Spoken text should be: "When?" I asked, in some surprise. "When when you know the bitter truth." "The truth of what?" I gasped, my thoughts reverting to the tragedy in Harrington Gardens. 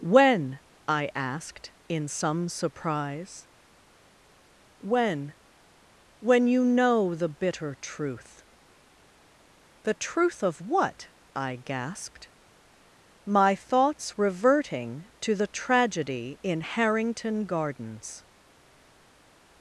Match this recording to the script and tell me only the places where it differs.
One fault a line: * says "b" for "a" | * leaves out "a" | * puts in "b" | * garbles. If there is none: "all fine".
all fine